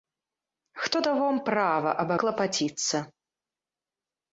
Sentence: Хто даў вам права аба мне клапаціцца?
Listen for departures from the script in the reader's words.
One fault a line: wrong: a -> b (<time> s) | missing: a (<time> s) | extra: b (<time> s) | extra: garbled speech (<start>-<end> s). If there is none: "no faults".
missing: мне (2.1 s)